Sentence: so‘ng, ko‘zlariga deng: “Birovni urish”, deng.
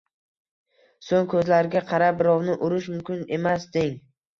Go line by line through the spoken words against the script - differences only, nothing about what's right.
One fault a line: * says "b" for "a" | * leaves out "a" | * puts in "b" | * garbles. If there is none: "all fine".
* says "qarab" for "deng"
* puts in "mumkin emas"